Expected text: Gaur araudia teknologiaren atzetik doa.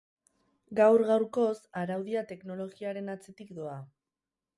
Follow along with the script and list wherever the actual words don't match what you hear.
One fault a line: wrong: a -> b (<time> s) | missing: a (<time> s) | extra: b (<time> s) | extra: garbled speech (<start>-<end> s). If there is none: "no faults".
extra: gaurkoz (1.1 s)